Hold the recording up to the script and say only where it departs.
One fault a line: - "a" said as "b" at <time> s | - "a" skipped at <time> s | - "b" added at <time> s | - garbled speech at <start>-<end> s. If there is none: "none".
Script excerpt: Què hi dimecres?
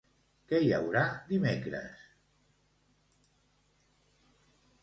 - "haurà" added at 0.7 s